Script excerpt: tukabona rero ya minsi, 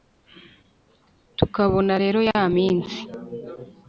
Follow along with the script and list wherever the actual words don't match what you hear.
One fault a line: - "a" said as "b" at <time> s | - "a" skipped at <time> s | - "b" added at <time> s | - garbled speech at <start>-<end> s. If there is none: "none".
none